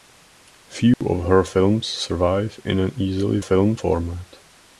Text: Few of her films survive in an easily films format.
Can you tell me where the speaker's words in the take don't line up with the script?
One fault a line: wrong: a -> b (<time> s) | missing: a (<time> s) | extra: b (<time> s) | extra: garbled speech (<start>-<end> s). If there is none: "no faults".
no faults